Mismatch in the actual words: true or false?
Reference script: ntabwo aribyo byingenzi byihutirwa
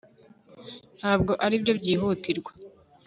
true